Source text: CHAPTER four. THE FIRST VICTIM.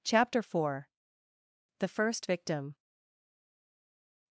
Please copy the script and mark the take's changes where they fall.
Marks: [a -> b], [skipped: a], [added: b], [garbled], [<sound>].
CHAPTER four. THE FIRST VICTIM.